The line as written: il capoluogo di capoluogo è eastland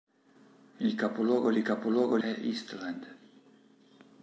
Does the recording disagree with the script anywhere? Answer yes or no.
no